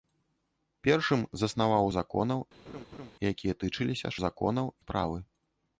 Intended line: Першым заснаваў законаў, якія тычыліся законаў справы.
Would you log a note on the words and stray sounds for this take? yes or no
yes